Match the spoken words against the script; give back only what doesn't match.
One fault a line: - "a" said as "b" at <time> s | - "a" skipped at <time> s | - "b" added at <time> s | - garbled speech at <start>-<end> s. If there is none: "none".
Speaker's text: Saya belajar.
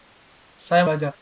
none